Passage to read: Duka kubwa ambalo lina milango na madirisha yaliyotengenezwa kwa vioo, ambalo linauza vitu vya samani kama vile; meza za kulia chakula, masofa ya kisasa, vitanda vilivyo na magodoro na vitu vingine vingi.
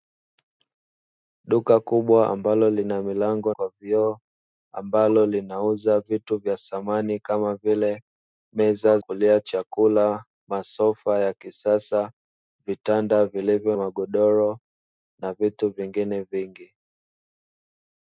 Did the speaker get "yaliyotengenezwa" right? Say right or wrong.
wrong